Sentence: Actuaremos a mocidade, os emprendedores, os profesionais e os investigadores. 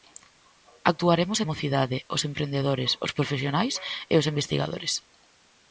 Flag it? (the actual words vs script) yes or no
no